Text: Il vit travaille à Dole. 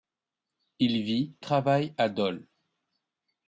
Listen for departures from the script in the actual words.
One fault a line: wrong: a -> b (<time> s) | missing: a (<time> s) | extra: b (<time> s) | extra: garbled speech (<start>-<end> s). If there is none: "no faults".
no faults